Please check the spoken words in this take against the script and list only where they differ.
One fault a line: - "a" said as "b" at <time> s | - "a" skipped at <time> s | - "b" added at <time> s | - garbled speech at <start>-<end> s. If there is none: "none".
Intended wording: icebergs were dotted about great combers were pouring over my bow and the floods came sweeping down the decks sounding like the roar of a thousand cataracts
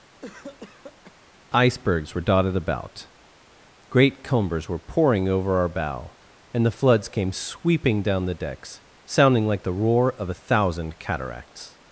- "my" said as "our" at 5.6 s